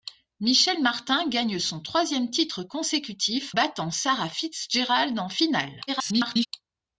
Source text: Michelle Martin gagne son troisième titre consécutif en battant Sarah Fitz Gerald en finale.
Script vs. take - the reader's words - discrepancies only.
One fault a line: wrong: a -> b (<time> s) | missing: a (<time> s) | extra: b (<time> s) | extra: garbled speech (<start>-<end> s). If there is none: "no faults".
missing: en (3.5 s)
extra: garbled speech (5.9-6.5 s)